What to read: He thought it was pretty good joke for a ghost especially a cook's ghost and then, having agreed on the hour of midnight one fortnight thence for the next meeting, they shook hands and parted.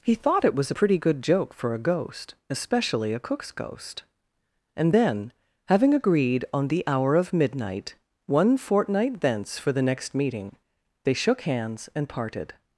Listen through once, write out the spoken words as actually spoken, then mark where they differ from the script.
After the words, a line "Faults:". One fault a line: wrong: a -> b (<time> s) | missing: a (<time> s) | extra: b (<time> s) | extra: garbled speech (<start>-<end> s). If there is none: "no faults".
He thought it was pretty good joke for a ghost especially a cook's ghost and then, having agreed on the hour of midnight one fortnight thence for the next meeting, they shook hands and parted.
Faults:
no faults